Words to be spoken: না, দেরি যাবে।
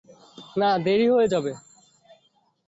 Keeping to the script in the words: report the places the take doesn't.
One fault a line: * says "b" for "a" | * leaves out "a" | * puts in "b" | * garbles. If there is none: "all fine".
* puts in "হয়ে"